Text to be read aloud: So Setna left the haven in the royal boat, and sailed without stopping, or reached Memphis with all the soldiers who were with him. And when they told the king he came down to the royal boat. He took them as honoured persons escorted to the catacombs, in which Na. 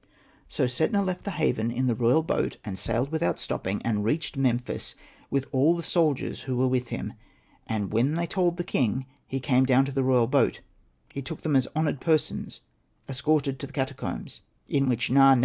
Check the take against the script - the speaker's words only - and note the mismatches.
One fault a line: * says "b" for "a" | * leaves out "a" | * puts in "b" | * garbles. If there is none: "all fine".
* says "and" for "or"